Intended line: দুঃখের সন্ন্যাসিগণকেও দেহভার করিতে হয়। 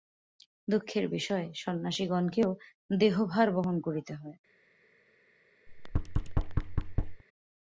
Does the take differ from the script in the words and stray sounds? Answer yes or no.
yes